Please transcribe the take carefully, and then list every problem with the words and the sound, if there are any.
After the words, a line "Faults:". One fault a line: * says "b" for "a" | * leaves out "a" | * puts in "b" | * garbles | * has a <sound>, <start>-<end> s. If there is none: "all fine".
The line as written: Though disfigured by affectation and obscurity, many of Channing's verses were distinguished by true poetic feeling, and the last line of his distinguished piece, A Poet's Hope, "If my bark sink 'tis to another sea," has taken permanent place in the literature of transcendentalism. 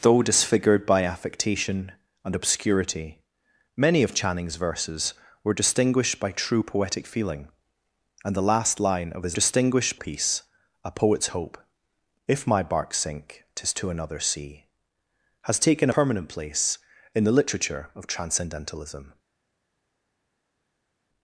Though disfigured by affectation and obscurity, many of Channing's verses were distinguished by true poetic feeling, and the last line of his distinguished piece, A Poet's Hope, "If my bark sink 'tis to another sea," has taken permanent place in the literature of transcendentalism.
Faults:
all fine